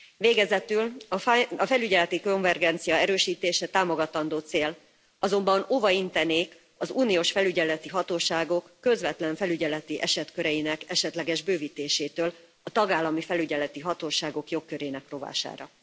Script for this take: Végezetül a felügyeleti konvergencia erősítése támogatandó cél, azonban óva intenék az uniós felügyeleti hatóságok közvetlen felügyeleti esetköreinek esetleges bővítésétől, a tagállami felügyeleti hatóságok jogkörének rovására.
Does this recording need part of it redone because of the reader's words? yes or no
no